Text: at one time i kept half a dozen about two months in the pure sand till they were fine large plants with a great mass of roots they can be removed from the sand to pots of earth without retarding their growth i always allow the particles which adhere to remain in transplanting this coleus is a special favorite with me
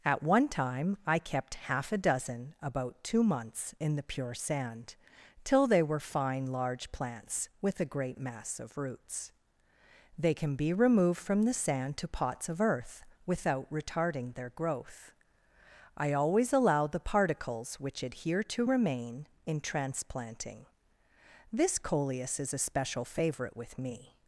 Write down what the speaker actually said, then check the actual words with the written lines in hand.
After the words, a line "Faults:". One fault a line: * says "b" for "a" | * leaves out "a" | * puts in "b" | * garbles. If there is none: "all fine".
at one time i kept half a dozen about two months in the pure sand till they were fine large plants with a great mass of roots they can be removed from the sand to pots of earth without retarding their growth i always allow the particles which adhere to remain in transplanting this coleus is a special favorite with me
Faults:
all fine